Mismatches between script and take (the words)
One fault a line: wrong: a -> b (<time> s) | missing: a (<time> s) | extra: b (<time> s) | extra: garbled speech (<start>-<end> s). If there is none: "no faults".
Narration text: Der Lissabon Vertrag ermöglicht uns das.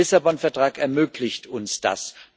no faults